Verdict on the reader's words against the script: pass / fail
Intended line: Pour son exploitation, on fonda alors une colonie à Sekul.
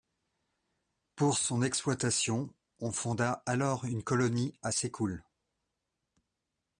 pass